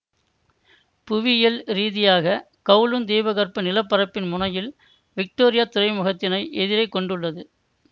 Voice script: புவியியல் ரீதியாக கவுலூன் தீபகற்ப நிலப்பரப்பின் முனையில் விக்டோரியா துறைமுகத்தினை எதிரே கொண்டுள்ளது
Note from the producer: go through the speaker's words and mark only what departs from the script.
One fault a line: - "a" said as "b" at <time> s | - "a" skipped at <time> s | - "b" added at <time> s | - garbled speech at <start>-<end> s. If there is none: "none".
none